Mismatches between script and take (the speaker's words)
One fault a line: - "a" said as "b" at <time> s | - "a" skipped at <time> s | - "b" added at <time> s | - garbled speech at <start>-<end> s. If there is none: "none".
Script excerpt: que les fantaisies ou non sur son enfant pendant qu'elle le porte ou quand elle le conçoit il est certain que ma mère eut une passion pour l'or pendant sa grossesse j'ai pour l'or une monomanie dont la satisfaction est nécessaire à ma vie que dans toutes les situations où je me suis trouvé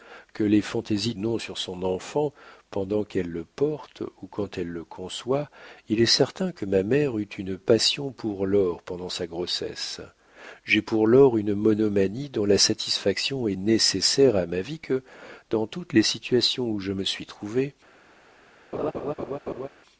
none